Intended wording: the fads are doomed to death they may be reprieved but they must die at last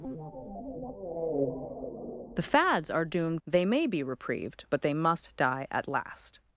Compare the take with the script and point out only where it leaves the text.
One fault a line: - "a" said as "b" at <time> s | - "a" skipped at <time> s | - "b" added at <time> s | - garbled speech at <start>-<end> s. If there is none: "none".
- "to death" skipped at 3.4 s